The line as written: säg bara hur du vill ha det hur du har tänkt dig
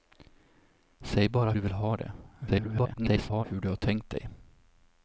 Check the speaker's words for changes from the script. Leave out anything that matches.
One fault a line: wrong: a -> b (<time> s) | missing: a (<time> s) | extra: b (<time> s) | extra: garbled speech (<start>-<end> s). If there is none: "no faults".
missing: hur (1.5 s)
extra: garbled speech (2.5-3.4 s)